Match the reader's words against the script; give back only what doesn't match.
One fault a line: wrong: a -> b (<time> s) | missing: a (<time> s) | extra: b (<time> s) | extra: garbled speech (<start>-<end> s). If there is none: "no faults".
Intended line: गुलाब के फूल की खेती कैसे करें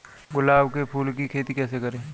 no faults